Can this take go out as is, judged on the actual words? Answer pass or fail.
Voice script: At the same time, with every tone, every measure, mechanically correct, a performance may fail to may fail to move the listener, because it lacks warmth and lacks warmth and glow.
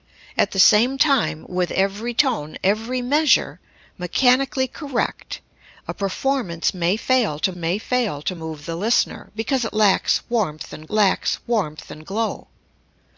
pass